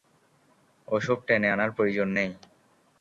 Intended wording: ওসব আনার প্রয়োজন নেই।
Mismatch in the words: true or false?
true